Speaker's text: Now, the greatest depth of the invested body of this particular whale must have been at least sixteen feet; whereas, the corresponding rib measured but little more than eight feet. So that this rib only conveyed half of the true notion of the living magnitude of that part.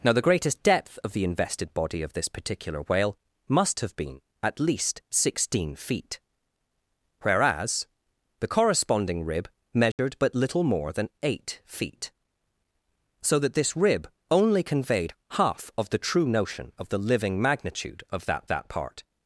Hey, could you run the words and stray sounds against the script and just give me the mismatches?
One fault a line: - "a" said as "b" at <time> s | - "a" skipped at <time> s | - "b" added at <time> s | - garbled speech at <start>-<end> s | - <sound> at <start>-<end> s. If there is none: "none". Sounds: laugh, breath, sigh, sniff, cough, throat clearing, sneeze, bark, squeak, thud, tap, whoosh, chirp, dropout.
- dropout at 9.9-10.0 s
- "that" added at 18.5 s